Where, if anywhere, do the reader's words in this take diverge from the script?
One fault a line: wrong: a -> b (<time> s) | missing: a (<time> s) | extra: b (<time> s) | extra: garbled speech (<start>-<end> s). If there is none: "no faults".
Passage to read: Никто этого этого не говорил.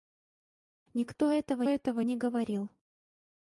no faults